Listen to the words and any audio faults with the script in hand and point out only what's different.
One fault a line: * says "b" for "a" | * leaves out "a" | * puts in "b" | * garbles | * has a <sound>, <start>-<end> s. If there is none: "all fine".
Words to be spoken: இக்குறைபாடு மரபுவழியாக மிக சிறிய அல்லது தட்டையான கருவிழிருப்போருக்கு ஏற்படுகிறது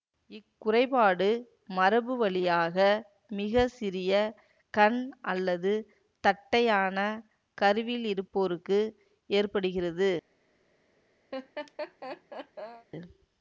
* puts in "கண்"
* has a laugh, 11.3-12.9 s